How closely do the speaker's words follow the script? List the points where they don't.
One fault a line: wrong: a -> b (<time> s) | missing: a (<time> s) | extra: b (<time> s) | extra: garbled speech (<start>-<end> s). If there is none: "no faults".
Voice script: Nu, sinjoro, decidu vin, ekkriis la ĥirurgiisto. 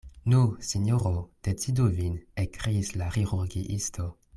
no faults